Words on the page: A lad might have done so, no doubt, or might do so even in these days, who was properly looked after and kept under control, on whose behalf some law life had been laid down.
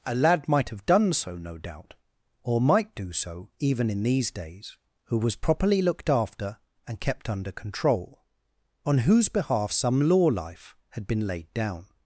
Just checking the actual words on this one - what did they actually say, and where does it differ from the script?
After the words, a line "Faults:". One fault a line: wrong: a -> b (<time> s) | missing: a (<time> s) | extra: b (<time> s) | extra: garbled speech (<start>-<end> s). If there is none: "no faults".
A lad might have done so, no doubt, or might do so even in these days, who was properly looked after and kept under control, on whose behalf some law life had been laid down.
Faults:
no faults